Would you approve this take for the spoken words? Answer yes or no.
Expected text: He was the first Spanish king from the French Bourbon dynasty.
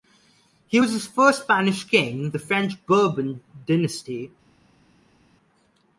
no